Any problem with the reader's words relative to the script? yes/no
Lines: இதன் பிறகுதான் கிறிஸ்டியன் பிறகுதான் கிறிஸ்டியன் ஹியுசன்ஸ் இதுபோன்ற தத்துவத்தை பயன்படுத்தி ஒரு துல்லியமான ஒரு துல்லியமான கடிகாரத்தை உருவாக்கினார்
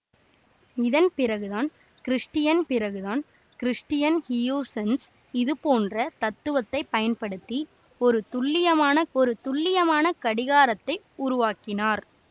no